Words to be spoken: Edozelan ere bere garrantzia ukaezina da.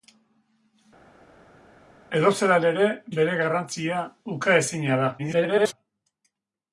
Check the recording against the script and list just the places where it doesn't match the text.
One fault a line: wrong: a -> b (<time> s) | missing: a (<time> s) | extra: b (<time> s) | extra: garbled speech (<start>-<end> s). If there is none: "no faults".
extra: garbled speech (5.2-5.7 s)